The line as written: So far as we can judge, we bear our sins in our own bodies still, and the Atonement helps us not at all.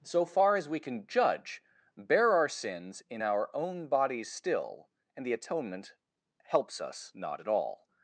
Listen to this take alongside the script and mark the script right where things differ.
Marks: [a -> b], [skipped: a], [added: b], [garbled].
So far as we can judge, [skipped: we] bear our sins in our own bodies still, and the Atonement helps us not at all.